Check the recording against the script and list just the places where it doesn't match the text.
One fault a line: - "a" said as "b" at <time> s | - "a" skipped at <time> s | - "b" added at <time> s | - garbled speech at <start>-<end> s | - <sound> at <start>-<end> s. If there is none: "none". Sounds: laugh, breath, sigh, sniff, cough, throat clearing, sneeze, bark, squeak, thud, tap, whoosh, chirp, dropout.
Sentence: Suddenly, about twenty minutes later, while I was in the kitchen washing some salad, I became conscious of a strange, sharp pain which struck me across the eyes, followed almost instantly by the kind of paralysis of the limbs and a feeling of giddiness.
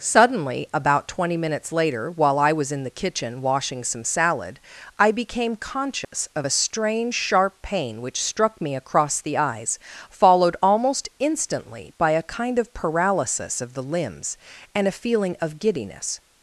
- dropout at 6.0-6.1 s
- "the" said as "a" at 12.1 s